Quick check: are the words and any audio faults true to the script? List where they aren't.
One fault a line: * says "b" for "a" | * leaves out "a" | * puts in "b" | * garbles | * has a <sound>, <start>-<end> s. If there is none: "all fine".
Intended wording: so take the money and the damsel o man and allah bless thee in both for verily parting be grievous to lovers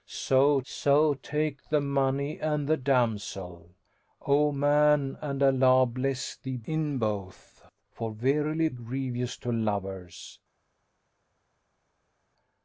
* puts in "so"
* leaves out "parting be"